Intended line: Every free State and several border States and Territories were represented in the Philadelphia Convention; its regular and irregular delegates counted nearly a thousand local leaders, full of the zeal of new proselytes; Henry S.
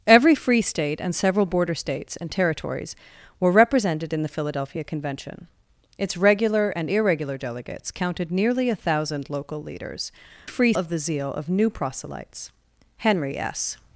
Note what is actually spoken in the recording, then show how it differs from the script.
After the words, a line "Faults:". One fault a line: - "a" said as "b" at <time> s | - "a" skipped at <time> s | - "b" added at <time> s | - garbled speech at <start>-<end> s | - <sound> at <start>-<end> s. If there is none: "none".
Every free State and several border States and Territories were represented in the Philadelphia Convention; its regular and irregular delegates counted nearly a thousand local leaders, free of the zeal of new proselytes; Henry S.
Faults:
- "full" said as "free" at 10.4 s